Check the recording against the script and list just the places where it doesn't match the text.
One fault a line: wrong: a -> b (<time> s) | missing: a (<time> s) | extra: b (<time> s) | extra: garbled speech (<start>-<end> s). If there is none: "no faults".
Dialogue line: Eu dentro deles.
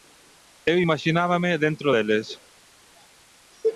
extra: imaxinábame (0.8 s)